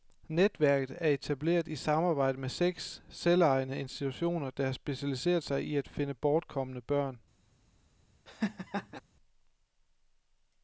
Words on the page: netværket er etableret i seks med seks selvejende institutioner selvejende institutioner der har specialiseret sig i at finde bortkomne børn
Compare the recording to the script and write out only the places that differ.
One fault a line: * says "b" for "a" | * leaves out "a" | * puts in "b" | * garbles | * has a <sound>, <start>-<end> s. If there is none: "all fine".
* says "samarbejde" for "seks"
* leaves out "selvejende institutioner"
* has a laugh, 8.3-9.0 s